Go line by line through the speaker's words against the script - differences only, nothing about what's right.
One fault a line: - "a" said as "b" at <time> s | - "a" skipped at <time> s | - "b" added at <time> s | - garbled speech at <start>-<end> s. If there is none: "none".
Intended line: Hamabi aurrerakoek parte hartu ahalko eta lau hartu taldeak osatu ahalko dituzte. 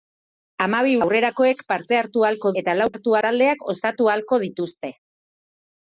none